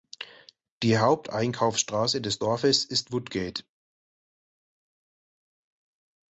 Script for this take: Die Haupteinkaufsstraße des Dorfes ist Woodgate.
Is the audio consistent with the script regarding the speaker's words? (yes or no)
yes